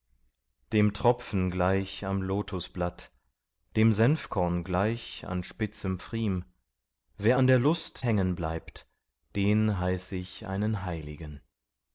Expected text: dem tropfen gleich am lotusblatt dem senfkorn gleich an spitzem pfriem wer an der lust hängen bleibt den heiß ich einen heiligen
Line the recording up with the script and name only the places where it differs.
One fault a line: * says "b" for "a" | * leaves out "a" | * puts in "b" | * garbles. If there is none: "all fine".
all fine